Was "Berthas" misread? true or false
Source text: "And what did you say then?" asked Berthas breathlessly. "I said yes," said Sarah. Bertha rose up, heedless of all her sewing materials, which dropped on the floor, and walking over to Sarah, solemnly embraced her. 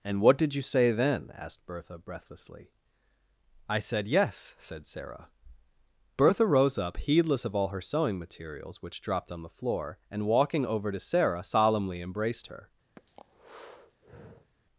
true